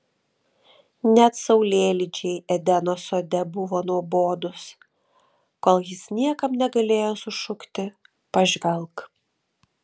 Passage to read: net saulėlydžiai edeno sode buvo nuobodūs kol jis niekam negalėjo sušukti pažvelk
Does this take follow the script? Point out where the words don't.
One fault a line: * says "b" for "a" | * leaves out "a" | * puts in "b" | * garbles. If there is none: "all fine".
all fine